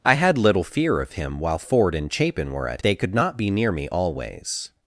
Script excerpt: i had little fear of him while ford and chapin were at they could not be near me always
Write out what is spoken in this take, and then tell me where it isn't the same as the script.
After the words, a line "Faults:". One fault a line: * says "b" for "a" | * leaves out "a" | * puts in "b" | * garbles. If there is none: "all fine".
i had little fear of him while ford and chapin were at they could not be near me always
Faults:
all fine